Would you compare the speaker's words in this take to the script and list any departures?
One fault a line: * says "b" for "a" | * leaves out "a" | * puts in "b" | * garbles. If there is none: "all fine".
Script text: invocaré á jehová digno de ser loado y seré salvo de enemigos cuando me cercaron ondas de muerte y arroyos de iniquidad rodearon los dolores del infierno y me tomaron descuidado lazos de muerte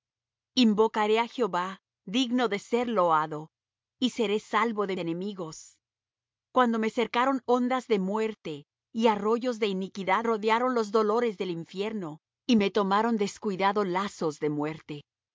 all fine